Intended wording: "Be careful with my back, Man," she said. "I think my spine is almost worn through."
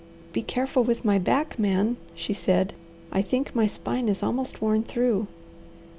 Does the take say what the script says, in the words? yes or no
yes